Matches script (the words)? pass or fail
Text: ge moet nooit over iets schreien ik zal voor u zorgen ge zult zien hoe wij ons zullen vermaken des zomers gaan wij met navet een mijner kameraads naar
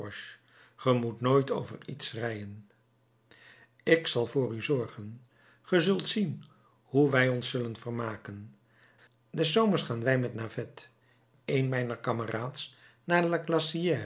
pass